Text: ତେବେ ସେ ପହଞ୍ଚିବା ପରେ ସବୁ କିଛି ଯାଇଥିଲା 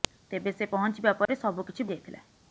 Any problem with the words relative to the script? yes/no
no